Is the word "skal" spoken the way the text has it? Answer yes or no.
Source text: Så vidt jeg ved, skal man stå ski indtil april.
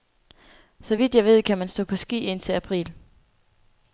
no